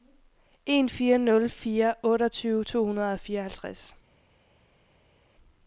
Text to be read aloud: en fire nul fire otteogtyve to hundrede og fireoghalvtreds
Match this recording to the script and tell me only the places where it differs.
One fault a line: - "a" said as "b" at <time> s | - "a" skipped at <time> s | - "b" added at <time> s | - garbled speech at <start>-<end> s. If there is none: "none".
none